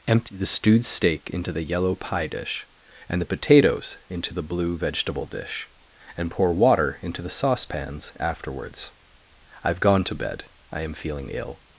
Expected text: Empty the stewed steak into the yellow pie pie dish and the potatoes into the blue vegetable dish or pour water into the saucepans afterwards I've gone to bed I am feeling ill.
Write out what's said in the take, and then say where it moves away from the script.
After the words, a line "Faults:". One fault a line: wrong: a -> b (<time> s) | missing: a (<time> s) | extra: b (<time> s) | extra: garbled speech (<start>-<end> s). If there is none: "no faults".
Empty the stewed steak into the yellow pie dish and the potatoes into the blue vegetable dish and pour water into the saucepans afterwards I've gone to bed I am feeling ill.
Faults:
missing: pie (2.3 s)
wrong: or -> and (6.2 s)